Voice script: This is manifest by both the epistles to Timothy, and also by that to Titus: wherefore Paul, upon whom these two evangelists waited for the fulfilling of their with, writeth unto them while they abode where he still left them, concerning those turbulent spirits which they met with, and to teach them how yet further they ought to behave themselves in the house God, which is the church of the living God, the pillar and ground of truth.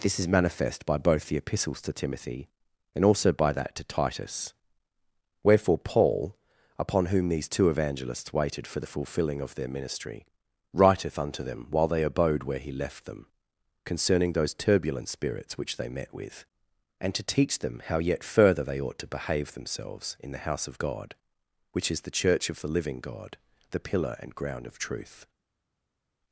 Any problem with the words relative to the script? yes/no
yes